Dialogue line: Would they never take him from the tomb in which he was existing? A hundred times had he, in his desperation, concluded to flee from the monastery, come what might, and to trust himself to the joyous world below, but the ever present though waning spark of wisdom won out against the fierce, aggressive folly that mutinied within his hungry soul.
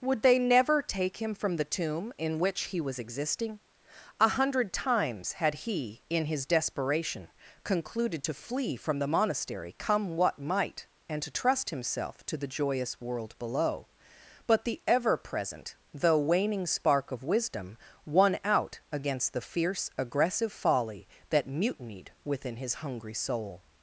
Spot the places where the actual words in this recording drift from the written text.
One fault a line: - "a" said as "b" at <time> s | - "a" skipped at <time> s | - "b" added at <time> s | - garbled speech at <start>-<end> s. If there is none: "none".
none